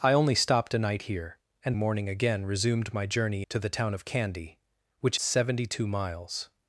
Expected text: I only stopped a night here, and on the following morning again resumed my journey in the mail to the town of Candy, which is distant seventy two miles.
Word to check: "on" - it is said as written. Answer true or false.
false